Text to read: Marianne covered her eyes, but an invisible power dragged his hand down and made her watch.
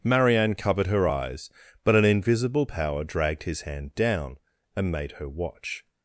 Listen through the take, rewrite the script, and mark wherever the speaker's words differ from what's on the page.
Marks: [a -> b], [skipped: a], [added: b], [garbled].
Marianne covered her eyes, but an invisible power dragged his hand down and made her watch.